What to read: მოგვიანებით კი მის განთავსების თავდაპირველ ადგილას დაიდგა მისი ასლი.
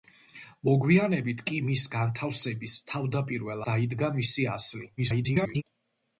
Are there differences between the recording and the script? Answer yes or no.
yes